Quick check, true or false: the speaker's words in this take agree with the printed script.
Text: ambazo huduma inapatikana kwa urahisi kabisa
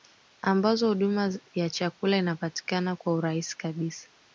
false